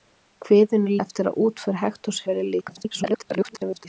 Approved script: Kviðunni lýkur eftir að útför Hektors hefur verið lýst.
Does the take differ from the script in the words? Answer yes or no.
yes